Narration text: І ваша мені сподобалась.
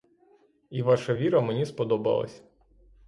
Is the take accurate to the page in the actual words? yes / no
no